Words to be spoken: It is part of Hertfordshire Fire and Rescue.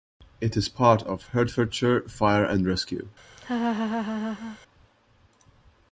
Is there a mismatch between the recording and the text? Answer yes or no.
no